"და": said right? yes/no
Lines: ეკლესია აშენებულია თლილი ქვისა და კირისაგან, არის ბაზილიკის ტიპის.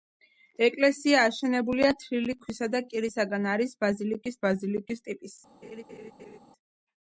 yes